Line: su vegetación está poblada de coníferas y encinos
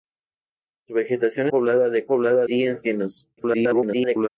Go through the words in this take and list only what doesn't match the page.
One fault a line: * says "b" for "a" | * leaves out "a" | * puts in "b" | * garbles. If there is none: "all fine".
* leaves out "está"
* says "poblada" for "coníferas"
* garbles